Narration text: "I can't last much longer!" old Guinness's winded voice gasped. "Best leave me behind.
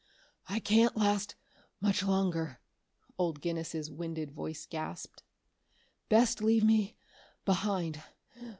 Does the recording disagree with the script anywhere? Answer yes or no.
no